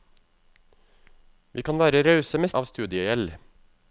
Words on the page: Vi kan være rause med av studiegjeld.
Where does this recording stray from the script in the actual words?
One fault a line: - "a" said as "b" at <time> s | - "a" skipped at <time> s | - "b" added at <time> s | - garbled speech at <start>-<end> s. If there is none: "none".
none